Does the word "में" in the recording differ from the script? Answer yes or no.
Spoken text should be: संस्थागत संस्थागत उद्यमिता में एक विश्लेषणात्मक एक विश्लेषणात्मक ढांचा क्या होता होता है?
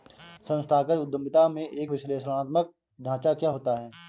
no